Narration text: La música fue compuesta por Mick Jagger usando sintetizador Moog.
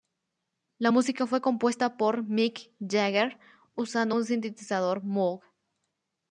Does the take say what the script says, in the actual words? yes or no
no